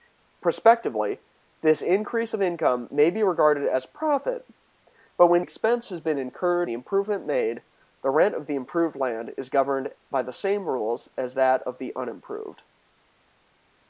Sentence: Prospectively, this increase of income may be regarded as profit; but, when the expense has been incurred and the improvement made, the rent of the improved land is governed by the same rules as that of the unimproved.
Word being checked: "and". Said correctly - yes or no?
no